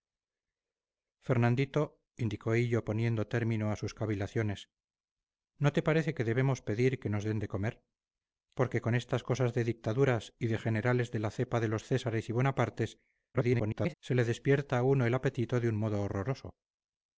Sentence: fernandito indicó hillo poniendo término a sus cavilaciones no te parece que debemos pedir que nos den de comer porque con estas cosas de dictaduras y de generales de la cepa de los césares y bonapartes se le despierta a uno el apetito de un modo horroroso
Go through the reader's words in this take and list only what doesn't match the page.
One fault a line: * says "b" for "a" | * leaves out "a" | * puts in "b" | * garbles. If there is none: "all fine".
* garbles